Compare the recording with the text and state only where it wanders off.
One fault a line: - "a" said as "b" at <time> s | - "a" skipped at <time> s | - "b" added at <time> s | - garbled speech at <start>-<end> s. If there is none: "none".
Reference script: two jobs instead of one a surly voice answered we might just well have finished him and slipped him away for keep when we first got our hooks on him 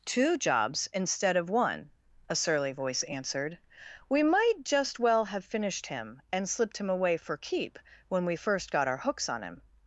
none